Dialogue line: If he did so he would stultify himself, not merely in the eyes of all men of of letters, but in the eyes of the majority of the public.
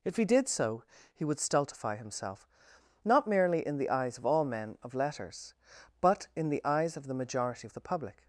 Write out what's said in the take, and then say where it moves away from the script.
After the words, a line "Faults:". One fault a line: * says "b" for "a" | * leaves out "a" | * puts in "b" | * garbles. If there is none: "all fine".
If he did so he would stultify himself, not merely in the eyes of all men of letters, but in the eyes of the majority of the public.
Faults:
* leaves out "of"